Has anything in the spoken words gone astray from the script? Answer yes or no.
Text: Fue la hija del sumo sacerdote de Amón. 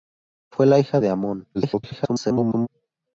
yes